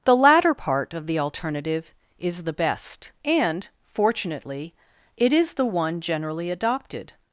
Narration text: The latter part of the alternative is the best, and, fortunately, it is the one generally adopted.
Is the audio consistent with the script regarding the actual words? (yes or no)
yes